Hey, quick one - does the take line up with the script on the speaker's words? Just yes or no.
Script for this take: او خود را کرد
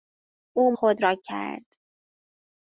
yes